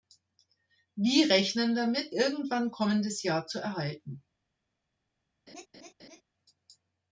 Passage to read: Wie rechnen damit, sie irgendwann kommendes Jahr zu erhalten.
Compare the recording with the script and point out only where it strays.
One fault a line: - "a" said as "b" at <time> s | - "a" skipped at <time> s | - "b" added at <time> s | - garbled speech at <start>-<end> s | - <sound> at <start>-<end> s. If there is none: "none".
- "sie" skipped at 2.1 s
- laugh at 5.5-6.2 s